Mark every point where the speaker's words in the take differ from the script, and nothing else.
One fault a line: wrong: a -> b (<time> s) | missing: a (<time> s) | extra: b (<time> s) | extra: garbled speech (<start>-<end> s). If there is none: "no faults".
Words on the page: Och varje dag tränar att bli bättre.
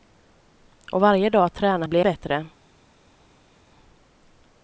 no faults